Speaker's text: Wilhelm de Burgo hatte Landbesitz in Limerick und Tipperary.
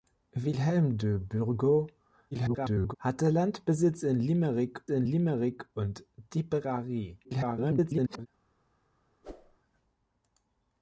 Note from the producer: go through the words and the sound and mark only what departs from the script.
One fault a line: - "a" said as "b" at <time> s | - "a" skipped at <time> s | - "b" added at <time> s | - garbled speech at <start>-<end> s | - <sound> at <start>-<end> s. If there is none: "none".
- garbled speech at 2.3-2.9 s
- "in Limerick" added at 4.9 s
- garbled speech at 7.2-8.3 s
- whoosh at 9.2-9.6 s